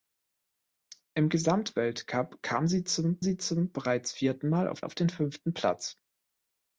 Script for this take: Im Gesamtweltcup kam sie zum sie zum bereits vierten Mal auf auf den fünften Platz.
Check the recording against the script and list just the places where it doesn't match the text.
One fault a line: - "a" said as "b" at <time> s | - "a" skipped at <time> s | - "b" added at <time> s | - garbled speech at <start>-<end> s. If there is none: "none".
none